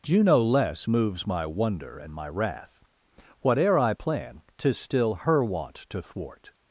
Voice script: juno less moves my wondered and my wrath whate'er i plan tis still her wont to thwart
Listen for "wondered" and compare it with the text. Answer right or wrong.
wrong